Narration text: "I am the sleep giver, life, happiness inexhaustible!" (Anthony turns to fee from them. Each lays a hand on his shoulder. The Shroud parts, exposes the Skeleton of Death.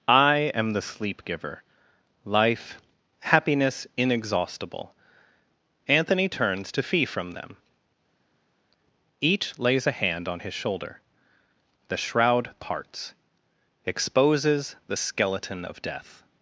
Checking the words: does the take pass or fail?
pass